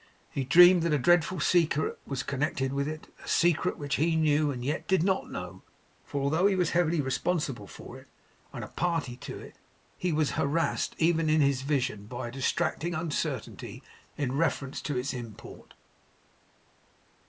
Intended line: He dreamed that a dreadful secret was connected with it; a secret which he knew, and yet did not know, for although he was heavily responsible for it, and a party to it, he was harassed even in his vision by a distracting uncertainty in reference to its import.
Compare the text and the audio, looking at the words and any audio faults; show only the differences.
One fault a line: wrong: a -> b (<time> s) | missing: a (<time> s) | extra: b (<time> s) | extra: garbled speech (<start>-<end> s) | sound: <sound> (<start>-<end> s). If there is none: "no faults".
no faults